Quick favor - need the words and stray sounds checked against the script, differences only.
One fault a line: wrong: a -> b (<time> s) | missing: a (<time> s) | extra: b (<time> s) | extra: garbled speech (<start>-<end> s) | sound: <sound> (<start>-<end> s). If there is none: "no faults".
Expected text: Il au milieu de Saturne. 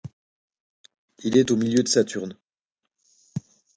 extra: est (1.4 s)